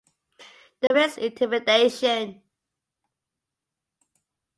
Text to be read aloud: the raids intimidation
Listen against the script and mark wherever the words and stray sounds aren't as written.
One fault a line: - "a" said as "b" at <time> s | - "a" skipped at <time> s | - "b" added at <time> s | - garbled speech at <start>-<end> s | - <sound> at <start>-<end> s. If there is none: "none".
- dropout at 0.9-0.9 s